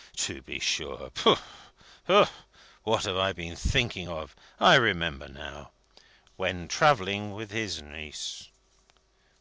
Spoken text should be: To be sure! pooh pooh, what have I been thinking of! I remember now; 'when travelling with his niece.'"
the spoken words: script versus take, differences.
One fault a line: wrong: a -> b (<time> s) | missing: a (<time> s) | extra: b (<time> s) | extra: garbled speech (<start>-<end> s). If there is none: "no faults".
no faults